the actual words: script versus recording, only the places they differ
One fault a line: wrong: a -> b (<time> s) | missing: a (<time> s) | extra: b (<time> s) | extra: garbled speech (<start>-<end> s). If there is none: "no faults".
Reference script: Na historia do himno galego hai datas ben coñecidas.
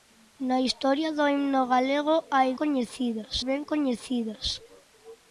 wrong: datas -> coñecidas (2.6 s)